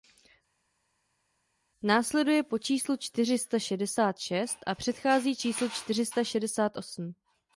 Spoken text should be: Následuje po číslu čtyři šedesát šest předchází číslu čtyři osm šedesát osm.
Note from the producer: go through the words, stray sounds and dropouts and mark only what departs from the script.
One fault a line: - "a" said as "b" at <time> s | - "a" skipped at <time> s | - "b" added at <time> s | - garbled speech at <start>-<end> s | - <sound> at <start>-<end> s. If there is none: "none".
- "sta" added at 3.4 s
- "a" added at 4.7 s
- "osm" said as "sta" at 6.1 s